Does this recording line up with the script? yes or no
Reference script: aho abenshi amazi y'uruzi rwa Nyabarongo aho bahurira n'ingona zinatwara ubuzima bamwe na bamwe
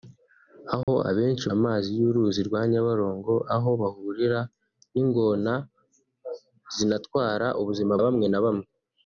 yes